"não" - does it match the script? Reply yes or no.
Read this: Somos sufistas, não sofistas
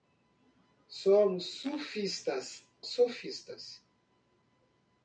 no